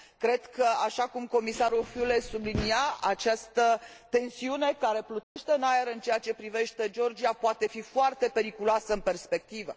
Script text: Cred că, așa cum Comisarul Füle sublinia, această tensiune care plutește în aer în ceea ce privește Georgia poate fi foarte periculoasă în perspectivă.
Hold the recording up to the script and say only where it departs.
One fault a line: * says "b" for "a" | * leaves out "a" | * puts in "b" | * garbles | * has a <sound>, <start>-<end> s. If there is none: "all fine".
* has a dropout, 5.2-5.4 s